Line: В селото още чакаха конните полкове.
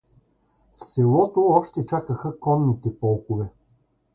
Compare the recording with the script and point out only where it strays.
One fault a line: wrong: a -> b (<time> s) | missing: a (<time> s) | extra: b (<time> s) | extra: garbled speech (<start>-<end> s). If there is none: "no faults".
no faults